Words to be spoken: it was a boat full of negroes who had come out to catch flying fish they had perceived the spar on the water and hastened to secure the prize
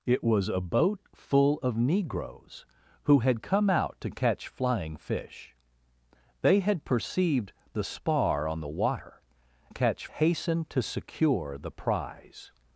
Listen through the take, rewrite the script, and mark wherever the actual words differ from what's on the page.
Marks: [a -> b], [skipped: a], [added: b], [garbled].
it was a boat full of negroes who had come out to catch flying fish they had perceived the spar on the water [and -> catch] hastened to secure the prize